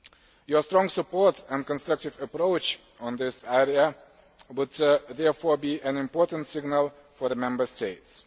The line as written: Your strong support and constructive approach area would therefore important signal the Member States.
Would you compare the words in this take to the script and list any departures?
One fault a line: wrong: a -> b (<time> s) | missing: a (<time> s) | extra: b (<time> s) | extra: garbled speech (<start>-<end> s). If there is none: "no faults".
extra: in this (3.0 s)
extra: be an (5.6 s)
extra: for (7.2 s)